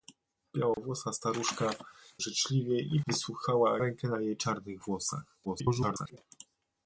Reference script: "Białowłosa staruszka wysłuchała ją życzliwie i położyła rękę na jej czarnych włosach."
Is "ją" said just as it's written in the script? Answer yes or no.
no